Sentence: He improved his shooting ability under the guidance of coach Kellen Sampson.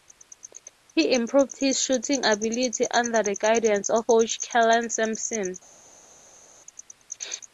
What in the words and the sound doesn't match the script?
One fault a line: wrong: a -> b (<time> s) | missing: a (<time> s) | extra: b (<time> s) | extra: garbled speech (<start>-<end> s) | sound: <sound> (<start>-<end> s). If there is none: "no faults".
no faults